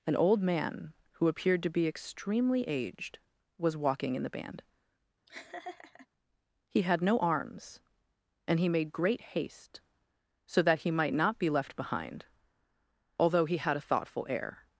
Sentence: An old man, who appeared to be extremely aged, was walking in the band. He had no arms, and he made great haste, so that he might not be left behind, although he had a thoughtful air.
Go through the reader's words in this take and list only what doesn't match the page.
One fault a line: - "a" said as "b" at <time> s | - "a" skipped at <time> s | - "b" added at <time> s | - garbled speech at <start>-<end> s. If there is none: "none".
none